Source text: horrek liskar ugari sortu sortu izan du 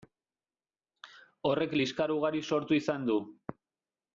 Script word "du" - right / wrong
right